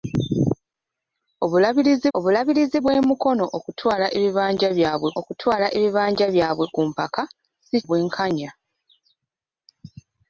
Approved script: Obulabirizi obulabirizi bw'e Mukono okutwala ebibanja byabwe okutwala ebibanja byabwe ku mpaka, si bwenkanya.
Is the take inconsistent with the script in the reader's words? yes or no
no